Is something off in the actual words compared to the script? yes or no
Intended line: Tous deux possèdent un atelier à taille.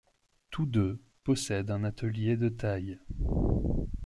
yes